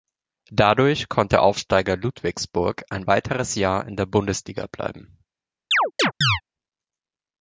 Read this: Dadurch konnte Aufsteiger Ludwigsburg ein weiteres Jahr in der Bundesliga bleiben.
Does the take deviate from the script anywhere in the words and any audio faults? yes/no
yes